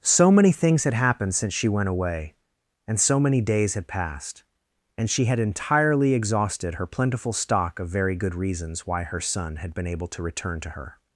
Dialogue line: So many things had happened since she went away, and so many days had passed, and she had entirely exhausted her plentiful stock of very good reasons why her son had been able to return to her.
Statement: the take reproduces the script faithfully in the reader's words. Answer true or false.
true